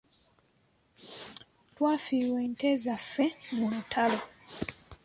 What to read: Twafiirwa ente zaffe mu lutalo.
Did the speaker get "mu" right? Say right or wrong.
right